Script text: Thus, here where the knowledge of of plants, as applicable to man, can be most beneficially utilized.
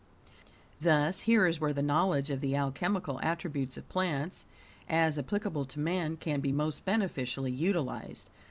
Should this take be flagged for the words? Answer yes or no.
yes